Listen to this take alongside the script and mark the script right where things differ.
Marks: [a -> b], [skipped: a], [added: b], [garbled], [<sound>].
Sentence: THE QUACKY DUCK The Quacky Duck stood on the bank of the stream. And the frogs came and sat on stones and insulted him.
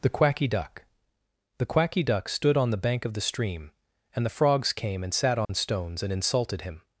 THE QUACKY DUCK The Quacky Duck stood on the bank of the stream. And the frogs came and sat on [dropout] stones and insulted him.